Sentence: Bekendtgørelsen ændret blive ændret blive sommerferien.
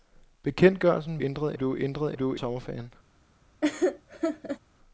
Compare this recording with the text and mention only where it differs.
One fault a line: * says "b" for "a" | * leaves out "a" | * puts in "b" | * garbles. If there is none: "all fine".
all fine